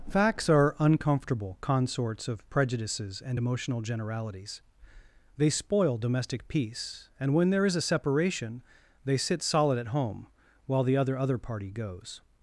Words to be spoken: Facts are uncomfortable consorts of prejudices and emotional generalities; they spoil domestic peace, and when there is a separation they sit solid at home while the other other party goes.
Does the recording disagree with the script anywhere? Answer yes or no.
no